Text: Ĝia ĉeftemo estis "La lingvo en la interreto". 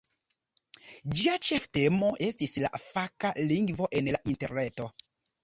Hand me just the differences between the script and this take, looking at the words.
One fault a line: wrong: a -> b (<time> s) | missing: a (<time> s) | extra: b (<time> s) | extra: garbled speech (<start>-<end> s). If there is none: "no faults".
extra: faka (2.9 s)